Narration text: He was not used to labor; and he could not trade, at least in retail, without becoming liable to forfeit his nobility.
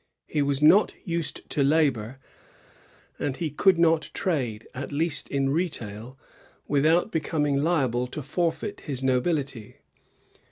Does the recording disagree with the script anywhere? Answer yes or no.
no